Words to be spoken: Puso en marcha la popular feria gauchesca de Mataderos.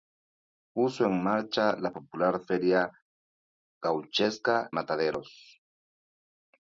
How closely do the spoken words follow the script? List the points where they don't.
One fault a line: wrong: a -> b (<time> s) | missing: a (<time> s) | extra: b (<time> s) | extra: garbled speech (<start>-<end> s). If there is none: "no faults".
missing: de (4.7 s)